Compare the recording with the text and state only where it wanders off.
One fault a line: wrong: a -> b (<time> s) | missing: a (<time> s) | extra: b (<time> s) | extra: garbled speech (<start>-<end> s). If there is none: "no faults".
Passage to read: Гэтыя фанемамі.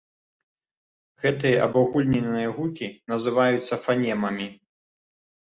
extra: абагульненыя гукі называюцца (1.7 s)